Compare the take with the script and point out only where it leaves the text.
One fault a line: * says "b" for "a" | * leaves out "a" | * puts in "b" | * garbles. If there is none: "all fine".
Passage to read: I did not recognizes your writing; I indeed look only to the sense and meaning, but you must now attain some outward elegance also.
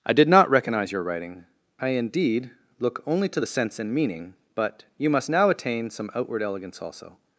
* says "recognize" for "recognizes"